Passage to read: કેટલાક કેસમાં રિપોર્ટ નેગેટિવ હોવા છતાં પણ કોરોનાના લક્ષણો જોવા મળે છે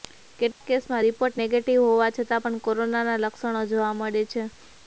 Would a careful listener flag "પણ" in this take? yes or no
no